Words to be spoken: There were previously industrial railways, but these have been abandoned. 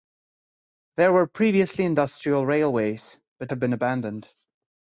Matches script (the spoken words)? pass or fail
fail